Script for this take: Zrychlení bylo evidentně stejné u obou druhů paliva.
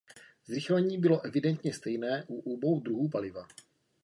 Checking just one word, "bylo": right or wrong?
right